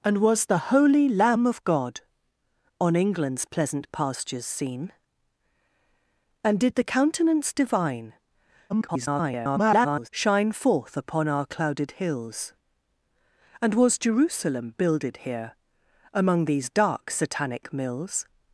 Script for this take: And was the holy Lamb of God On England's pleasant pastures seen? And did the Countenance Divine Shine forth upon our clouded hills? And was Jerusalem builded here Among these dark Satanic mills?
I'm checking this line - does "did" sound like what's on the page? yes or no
yes